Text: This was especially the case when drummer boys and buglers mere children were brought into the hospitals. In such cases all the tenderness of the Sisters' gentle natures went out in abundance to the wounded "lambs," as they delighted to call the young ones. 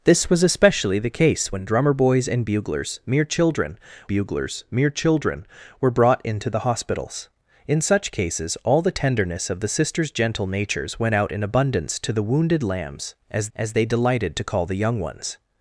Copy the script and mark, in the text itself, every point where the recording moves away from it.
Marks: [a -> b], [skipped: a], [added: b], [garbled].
This was especially the case when drummer boys and buglers mere children [added: buglers mere children] were brought into the hospitals. In such cases all the tenderness of the Sisters' gentle natures went out in abundance to the wounded "lambs," as [added: as] they delighted to call the young ones.